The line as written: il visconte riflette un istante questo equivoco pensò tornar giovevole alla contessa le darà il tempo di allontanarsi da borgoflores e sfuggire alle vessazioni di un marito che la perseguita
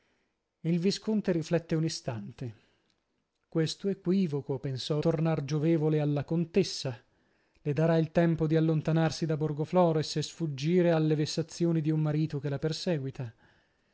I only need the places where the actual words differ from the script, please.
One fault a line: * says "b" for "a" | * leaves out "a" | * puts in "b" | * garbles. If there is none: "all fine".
all fine